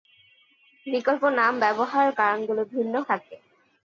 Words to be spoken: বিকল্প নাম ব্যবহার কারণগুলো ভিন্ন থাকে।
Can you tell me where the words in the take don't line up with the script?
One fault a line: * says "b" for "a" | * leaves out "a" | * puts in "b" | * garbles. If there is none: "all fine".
all fine